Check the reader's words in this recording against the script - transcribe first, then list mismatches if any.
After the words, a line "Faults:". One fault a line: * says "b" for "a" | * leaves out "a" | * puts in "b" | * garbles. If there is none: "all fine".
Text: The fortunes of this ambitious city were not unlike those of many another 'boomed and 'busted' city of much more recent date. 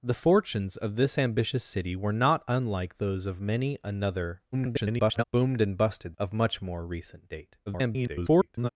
The fortunes of this ambitious city were not unlike those of many another [garbled] 'boomed and 'busted' of much more recent date. [garbled]
Faults:
* garbles
* leaves out "city"
* garbles